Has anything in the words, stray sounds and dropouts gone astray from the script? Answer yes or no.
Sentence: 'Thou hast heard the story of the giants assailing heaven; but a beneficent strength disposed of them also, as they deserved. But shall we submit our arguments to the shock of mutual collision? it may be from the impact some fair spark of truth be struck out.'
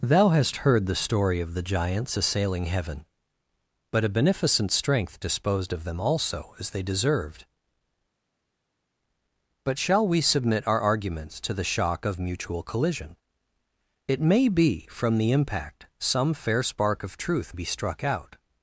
no